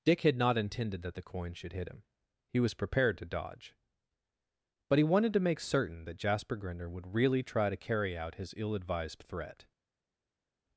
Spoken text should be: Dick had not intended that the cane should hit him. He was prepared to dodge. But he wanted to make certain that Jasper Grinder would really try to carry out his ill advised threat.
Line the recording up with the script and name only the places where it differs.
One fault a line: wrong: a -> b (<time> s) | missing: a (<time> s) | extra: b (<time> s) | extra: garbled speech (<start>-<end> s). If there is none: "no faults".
wrong: cane -> coin (1.2 s)